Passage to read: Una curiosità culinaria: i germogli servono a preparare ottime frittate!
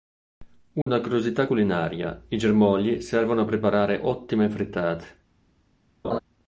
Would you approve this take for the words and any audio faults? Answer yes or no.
no